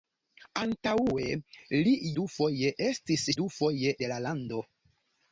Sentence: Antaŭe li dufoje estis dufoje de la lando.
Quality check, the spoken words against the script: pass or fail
pass